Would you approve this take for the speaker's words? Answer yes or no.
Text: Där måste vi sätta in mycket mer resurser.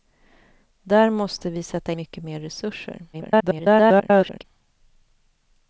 no